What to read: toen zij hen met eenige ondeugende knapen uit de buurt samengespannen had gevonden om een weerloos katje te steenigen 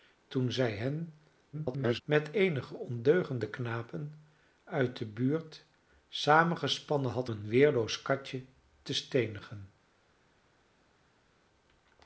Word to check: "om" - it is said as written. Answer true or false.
false